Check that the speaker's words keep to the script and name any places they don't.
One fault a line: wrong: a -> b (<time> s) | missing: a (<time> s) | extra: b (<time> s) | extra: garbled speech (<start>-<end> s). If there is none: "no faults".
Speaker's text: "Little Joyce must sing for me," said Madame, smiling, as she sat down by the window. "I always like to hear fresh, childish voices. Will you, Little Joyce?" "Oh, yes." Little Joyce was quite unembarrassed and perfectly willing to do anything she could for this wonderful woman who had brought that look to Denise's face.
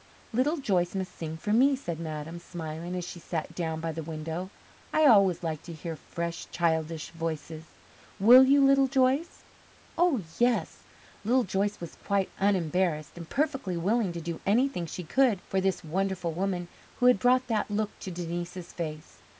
no faults